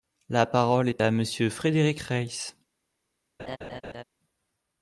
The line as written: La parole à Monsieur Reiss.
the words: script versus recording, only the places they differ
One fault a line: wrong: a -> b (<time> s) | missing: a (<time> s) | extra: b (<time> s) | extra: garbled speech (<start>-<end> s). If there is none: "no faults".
extra: est (0.9 s)
extra: Frédéric (1.5 s)